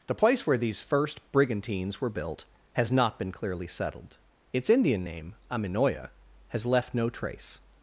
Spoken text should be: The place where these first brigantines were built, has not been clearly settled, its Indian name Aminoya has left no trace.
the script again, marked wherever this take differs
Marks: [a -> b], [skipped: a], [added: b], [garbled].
The place where these first brigantines were built, has not been clearly settled, its Indian name Aminoya has left no trace.